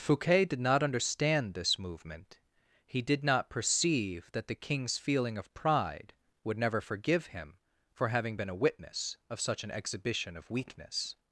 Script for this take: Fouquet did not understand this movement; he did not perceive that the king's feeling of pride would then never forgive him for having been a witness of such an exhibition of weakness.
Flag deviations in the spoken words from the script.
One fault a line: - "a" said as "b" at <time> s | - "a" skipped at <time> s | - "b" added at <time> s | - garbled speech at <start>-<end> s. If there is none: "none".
- "then" skipped at 6.6 s